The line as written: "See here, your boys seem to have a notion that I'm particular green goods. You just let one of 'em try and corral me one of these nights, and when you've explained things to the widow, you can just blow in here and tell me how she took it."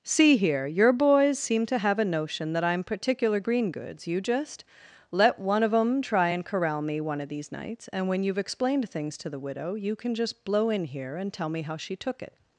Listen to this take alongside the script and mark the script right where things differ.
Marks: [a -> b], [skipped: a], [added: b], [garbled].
"See here, your boys seem to have a notion that I'm particular green goods. You just let one of 'em try and corral me one of these nights, and when you've explained things to the widow, you can just blow in here and tell me how she took it."